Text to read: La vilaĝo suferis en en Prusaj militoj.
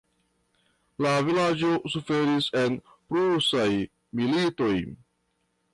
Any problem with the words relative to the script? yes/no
yes